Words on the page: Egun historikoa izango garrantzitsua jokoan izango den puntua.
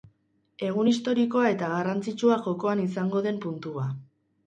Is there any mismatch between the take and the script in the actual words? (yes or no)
yes